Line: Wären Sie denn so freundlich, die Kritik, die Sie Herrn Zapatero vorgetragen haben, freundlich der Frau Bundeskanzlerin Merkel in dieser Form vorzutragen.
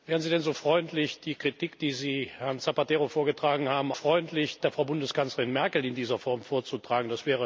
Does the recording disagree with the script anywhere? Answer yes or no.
no